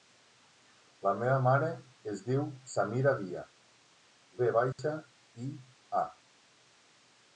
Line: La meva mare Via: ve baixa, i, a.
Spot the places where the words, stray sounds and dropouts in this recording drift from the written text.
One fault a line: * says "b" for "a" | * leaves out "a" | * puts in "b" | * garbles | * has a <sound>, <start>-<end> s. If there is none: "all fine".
* puts in "es diu Samira"
* has a dropout, 4.7-4.8 s